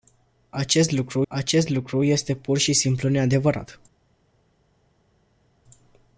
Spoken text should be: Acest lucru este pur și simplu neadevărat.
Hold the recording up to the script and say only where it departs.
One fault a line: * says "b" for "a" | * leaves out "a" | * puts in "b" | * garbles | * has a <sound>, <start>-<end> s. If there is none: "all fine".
* puts in "acest lucru"